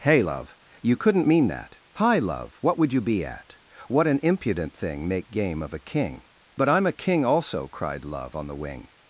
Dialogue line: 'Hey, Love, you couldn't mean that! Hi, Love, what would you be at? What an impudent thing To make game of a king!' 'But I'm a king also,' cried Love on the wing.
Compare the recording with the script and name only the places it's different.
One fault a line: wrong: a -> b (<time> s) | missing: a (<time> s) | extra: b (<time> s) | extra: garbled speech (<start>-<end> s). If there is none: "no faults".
missing: To (5.1 s)